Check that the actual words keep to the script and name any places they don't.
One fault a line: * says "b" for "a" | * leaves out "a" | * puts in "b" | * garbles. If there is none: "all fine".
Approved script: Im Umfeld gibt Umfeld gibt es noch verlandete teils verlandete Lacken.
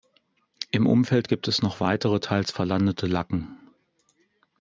* leaves out "Umfeld gibt"
* says "weitere" for "verlandete"